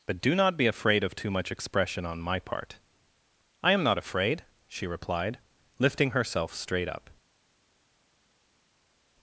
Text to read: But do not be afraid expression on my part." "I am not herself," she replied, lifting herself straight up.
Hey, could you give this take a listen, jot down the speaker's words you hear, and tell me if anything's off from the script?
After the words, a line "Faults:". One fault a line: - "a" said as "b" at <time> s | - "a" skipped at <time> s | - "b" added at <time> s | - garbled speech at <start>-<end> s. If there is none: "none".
But do not be afraid of too much expression on my part." "I am not afraid," she replied, lifting herself straight up.
Faults:
- "of too much" added at 1.0 s
- "herself" said as "afraid" at 4.0 s